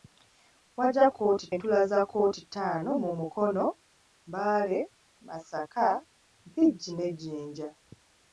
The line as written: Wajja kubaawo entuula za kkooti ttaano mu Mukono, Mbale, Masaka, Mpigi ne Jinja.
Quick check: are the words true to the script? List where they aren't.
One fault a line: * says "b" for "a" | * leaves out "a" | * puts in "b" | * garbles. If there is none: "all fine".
* says "kkooti" for "kubaawo"